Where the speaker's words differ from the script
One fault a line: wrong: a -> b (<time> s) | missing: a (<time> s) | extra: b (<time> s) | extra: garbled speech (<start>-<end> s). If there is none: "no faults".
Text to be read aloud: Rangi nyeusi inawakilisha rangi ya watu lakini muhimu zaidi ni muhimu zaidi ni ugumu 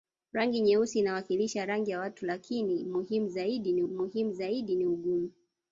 no faults